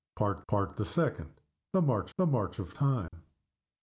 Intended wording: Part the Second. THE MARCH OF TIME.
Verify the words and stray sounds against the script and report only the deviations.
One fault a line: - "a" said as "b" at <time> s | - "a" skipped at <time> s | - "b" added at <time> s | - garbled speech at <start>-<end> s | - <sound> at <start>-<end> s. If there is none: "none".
- "part" added at 0.5 s
- "the MARCH" added at 2.2 s
- dropout at 3.1-3.1 s